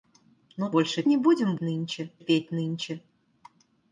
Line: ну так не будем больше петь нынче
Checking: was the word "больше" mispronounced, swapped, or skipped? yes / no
yes